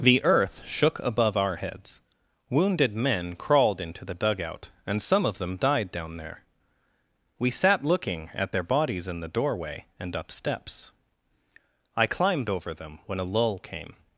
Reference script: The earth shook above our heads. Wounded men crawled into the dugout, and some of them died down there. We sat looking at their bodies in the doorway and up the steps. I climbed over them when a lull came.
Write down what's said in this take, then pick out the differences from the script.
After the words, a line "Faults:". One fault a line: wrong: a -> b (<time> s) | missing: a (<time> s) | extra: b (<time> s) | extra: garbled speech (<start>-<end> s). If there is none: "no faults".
The earth shook above our heads. Wounded men crawled into the dugout, and some of them died down there. We sat looking at their bodies in the doorway and up steps. I climbed over them when a lull came.
Faults:
missing: the (10.3 s)